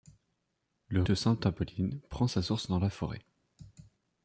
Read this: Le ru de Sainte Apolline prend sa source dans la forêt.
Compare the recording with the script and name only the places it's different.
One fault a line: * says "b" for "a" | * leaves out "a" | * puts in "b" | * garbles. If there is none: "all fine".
* leaves out "ru"